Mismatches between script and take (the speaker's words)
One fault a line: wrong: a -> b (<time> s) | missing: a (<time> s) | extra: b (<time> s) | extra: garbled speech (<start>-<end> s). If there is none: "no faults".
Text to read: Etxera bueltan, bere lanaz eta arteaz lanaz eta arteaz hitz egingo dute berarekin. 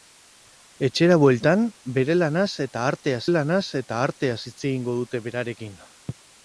no faults